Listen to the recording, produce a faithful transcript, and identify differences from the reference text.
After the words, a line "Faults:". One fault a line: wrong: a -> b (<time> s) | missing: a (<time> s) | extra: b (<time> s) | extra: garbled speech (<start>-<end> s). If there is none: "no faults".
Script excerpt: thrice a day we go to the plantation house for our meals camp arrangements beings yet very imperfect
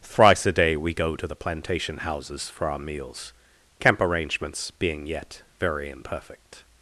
thrice a day we go to the plantation houses for our meals camp arrangements being yet very imperfect
Faults:
wrong: house -> houses (2.0 s)
wrong: beings -> being (4.7 s)